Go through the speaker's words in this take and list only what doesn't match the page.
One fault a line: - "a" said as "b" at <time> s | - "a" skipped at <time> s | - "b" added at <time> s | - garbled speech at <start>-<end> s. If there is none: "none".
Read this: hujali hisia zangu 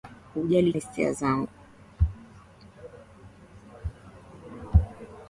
none